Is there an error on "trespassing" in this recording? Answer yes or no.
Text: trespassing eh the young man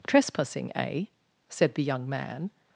no